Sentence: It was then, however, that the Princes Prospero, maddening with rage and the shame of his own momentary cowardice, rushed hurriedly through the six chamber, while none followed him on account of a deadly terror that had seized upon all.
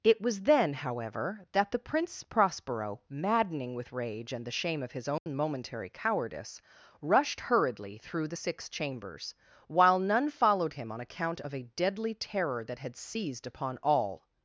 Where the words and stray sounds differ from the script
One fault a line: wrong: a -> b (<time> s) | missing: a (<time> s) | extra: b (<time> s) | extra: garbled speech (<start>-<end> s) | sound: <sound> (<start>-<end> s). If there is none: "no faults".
wrong: Princes -> Prince (1.8 s)
sound: dropout (5.2-5.3 s)
wrong: chamber -> chambers (8.7 s)